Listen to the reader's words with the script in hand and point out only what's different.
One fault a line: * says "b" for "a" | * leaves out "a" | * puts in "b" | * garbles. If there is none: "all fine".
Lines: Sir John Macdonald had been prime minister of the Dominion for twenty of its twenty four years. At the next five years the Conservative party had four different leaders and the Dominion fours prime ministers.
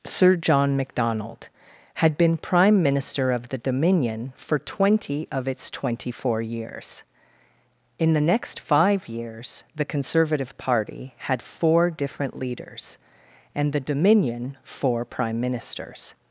* says "In" for "At"
* says "four" for "fours"